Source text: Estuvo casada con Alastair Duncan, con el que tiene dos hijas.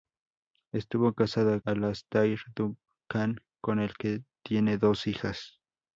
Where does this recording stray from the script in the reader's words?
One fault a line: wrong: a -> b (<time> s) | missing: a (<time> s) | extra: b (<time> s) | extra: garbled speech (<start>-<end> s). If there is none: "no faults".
missing: con (1.6 s)